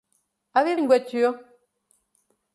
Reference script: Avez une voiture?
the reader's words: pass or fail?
pass